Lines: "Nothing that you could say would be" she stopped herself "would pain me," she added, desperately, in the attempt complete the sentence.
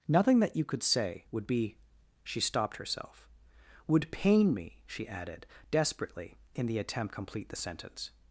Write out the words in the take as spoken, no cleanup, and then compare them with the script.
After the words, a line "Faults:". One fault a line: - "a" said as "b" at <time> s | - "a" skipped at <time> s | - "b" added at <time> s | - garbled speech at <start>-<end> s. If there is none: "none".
"Nothing that you could say would be" she stopped herself "would pain me," she added, desperately, in the attempt complete the sentence.
Faults:
none